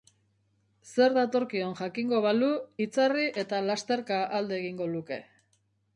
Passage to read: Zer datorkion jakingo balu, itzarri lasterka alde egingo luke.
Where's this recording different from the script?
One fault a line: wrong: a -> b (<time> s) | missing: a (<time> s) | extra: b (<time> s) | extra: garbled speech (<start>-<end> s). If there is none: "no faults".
extra: eta (3.4 s)